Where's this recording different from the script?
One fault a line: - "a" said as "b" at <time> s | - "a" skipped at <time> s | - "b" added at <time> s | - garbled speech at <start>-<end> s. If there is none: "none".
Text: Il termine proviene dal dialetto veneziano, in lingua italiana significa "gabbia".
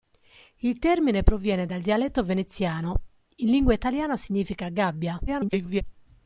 - garbled speech at 5.3-5.8 s